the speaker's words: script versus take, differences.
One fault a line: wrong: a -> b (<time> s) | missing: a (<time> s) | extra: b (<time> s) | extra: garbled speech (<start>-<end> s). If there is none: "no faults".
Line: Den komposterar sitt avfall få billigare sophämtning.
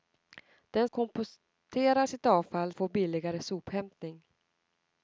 no faults